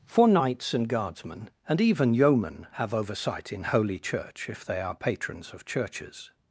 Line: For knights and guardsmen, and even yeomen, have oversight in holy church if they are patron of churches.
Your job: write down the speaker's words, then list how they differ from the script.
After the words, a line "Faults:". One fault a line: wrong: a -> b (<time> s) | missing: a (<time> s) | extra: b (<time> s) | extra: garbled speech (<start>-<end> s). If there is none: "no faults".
For knights and guardsmen, and even yeomen, have oversight in holy church if they are patrons of churches.
Faults:
wrong: patron -> patrons (4.9 s)